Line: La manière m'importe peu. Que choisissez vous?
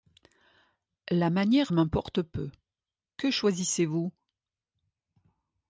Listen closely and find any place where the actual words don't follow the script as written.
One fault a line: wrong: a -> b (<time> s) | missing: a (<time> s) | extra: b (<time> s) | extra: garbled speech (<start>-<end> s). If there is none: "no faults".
no faults